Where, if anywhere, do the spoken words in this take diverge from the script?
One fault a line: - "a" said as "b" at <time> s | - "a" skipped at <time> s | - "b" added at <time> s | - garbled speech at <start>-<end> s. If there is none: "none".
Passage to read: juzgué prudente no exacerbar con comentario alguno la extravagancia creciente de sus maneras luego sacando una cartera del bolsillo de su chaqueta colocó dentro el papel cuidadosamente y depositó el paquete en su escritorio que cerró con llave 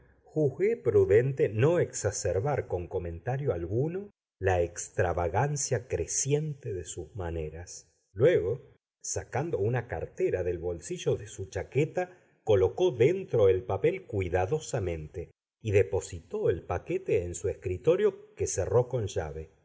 none